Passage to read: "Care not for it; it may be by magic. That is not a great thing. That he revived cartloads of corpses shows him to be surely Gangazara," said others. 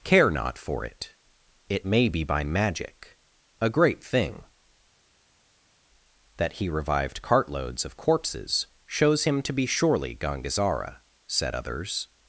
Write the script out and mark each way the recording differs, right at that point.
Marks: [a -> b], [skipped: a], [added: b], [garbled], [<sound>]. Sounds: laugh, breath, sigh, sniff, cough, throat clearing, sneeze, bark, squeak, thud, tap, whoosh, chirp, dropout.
"Care not for it; it may be by magic. [skipped: That is not] a great thing. That he revived cartloads of corpses shows him to be surely Gangazara," said others.